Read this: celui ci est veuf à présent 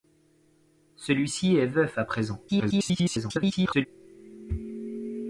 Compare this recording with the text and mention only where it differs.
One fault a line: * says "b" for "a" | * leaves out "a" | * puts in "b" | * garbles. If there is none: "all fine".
* garbles